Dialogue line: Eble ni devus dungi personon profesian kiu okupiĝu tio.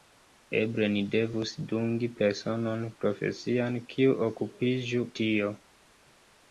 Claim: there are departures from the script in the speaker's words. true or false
false